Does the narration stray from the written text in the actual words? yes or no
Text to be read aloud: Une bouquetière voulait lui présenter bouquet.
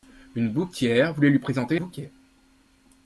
no